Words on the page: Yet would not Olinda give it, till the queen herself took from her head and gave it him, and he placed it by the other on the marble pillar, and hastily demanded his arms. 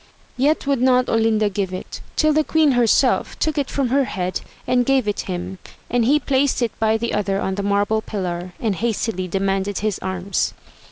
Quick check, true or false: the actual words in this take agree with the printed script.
false